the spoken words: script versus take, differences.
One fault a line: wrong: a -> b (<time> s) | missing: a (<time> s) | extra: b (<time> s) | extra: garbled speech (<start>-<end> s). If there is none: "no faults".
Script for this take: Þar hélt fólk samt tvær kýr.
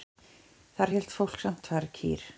no faults